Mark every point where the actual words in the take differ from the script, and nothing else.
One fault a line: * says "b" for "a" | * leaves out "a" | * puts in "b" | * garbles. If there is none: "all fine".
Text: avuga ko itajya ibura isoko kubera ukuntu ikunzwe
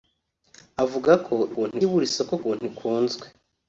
* says "ukuntu" for "itajya"
* leaves out "kubera"